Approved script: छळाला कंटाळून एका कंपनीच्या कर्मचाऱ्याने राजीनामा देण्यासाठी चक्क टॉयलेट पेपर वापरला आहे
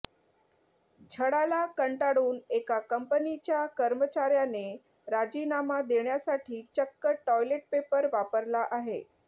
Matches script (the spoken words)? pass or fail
pass